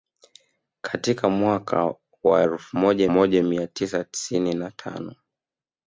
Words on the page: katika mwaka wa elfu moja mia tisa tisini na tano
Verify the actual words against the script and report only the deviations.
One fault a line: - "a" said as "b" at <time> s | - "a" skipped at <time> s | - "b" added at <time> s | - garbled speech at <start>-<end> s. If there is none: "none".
- "moja" added at 3.1 s